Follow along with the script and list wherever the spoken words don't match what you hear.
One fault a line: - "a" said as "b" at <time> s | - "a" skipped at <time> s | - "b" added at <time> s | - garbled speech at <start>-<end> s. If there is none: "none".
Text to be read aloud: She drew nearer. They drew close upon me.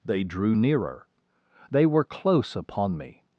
- "She" said as "They" at 0.0 s
- "drew" said as "were" at 1.9 s